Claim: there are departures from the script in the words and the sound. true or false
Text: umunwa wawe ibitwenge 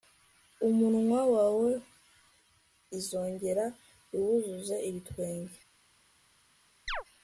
true